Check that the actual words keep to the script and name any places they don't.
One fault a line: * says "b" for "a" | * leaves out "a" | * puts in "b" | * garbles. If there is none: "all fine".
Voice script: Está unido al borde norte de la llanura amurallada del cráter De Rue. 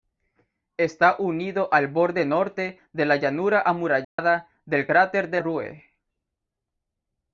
all fine